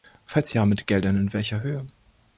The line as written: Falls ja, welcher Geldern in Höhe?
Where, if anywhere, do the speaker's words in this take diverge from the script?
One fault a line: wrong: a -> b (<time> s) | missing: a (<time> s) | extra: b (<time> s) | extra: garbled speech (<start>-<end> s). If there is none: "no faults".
wrong: welcher -> mit (0.7 s)
extra: welcher (1.3 s)